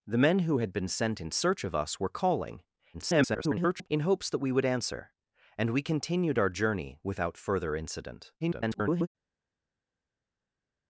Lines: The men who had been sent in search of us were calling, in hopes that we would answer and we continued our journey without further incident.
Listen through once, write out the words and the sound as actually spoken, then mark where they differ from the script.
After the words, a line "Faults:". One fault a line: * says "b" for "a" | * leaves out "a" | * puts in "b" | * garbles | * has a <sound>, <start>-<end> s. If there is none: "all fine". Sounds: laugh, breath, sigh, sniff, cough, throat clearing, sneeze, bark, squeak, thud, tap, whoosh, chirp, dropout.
The men who had been sent in search of us were calling, [garbled] in hopes that we would answer and we continued our journey without further incident. [garbled]
Faults:
* garbles
* garbles